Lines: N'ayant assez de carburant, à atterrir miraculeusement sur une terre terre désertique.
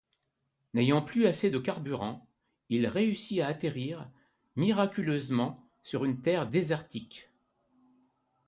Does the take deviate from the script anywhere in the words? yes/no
yes